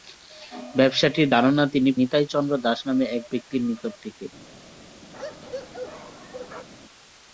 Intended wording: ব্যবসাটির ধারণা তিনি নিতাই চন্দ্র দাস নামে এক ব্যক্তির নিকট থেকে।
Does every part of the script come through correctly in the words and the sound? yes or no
no